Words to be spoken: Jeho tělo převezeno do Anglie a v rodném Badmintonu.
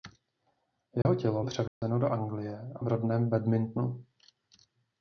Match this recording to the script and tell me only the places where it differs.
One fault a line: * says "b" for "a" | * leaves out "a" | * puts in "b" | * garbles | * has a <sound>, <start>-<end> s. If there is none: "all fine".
* has a dropout, 1.0-1.1 s
* has a dropout, 1.7-1.8 s